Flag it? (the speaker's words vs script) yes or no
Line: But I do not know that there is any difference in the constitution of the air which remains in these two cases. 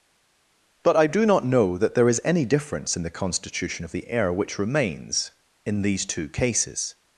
no